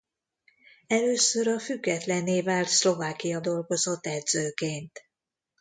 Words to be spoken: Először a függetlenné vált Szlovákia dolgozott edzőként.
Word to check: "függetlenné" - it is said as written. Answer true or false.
true